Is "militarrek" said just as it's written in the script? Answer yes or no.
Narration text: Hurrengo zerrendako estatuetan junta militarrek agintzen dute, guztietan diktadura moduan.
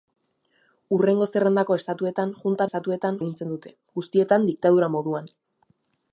no